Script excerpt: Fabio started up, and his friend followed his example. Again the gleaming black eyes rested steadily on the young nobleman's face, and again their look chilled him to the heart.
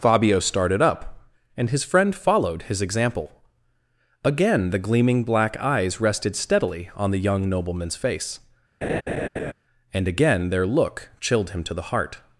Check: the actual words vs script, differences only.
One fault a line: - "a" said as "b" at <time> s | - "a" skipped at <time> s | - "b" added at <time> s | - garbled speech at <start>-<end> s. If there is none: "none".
none